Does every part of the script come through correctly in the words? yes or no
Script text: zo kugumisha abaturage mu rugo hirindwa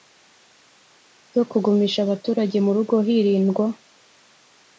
yes